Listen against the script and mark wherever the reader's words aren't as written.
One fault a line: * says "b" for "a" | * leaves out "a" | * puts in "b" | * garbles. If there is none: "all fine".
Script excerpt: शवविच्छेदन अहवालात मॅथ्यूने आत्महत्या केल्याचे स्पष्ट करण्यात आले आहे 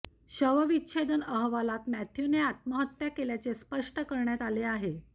all fine